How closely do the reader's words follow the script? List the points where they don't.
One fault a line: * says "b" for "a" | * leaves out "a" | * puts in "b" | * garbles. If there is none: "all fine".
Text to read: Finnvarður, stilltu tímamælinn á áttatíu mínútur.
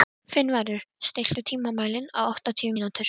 all fine